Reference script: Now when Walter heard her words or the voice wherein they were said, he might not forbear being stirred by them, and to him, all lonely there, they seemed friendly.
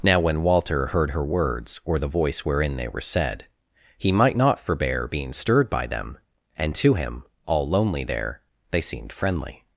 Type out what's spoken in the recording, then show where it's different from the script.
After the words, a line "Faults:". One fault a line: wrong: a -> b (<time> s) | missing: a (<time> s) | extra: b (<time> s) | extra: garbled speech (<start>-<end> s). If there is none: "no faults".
Now when Walter heard her words or the voice wherein they were said, he might not forbear being stirred by them, and to him, all lonely there, they seemed friendly.
Faults:
no faults